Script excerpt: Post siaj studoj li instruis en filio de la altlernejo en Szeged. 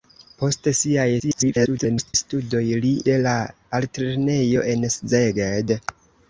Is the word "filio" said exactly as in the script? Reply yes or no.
no